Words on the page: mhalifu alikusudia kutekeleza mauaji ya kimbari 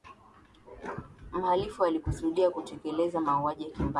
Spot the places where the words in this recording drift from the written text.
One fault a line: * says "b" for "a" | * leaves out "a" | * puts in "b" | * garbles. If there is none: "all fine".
all fine